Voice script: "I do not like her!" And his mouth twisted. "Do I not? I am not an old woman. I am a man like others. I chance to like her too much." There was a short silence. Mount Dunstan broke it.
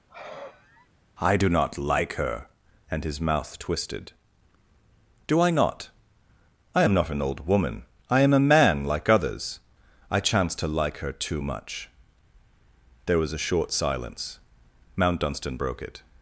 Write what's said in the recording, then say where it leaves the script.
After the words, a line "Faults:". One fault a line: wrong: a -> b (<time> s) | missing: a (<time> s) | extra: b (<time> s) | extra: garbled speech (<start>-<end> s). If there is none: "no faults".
"I do not like her!" And his mouth twisted. "Do I not? I am not an old woman. I am a man like others. I chance to like her too much." There was a short silence. Mount Dunstan broke it.
Faults:
no faults